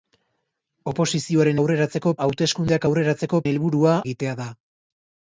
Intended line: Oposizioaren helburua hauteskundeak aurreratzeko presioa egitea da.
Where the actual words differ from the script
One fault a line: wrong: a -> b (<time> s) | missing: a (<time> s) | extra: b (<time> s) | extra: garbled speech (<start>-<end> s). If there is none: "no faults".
wrong: helburua -> aurreratzeko (1.6 s)
wrong: presioa -> helburua (3.5 s)